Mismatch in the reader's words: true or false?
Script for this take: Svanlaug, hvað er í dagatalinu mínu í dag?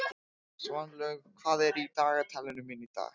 false